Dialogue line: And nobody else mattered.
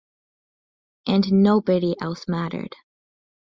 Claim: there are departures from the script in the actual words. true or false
false